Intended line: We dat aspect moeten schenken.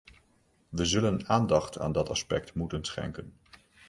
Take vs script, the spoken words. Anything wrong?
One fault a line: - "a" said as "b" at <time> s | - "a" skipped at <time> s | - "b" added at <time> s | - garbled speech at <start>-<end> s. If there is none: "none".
- "zullen aandacht aan" added at 0.8 s